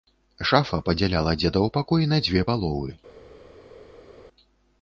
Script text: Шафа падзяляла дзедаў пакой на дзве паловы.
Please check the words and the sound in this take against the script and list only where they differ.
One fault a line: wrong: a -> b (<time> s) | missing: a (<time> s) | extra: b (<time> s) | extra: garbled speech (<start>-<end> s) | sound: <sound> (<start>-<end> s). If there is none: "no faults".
no faults